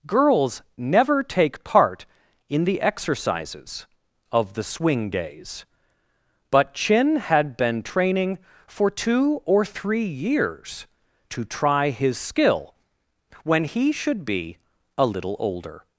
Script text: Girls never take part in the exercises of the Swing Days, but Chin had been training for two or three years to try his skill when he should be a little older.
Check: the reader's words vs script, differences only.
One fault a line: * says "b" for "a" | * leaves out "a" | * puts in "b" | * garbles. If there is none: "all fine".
all fine